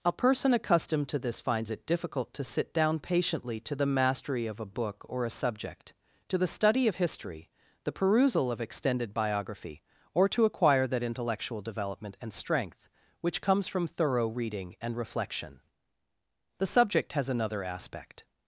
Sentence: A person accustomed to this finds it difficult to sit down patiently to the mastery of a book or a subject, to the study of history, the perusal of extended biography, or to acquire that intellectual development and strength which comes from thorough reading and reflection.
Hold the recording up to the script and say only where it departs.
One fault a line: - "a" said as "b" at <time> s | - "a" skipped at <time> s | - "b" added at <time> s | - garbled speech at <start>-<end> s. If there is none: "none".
- "The subject has another aspect" added at 16.6 s